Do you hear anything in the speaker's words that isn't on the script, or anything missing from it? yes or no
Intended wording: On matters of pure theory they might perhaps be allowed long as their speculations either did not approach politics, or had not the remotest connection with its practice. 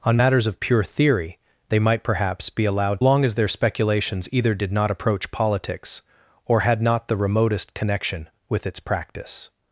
no